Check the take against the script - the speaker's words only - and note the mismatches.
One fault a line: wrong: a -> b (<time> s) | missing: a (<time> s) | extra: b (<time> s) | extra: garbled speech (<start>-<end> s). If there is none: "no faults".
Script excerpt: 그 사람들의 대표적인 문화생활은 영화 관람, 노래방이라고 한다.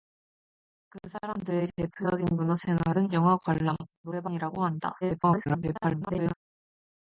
extra: garbled speech (5.0-6.3 s)